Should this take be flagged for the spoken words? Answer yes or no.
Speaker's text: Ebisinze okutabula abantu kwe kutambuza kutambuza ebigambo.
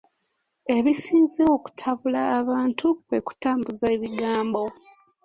yes